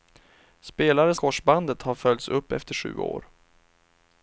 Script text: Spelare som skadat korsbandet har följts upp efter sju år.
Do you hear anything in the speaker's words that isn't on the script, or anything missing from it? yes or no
yes